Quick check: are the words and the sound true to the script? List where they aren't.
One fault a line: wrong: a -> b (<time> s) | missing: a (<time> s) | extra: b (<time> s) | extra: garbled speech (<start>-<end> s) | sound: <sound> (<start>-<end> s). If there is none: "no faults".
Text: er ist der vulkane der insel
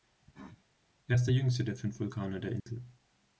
sound: cough (0.2-0.6 s)
extra: jüngste der fünf (1.3 s)
sound: dropout (2.6-2.7 s)